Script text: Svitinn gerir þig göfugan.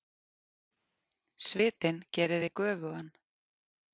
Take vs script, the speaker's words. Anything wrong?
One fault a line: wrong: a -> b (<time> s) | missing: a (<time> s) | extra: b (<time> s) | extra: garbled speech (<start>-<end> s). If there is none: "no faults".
no faults